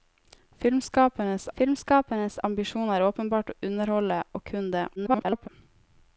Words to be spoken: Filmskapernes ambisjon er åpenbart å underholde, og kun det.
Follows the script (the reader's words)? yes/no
no